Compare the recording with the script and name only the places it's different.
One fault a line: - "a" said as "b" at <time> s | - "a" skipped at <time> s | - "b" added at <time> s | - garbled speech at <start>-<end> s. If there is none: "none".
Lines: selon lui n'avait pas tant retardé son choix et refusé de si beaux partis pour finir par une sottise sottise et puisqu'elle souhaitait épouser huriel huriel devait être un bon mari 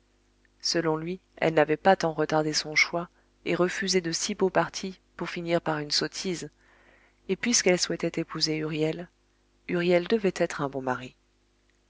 - "elle" added at 1.4 s
- "sottise" skipped at 6.5 s